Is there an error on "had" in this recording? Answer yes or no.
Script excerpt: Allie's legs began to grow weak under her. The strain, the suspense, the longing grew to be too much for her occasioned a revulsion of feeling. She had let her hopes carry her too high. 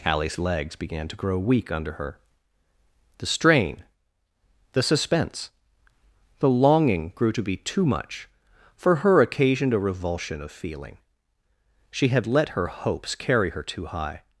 no